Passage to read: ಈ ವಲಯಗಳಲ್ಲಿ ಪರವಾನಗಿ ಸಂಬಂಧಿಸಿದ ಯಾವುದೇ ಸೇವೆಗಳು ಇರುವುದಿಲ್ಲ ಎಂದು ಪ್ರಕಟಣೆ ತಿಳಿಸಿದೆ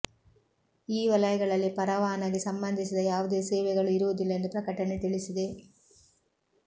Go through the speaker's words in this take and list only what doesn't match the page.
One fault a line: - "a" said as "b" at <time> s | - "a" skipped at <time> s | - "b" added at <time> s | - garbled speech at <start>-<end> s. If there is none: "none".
none